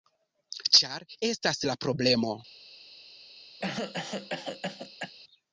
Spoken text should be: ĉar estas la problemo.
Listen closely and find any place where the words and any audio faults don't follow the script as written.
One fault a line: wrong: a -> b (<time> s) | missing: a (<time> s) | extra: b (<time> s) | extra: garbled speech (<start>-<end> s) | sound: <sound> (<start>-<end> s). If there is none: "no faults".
sound: cough (3.6-5.1 s)